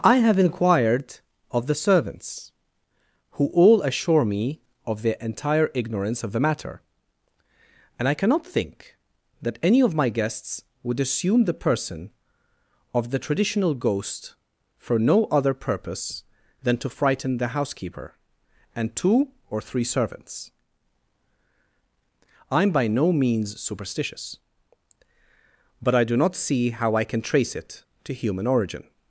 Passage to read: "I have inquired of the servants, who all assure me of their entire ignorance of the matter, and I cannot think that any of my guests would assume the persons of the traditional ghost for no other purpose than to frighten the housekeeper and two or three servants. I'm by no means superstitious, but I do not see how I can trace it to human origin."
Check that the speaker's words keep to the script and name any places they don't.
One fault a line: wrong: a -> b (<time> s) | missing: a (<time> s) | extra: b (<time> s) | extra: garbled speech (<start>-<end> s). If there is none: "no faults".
wrong: persons -> person (11.5 s)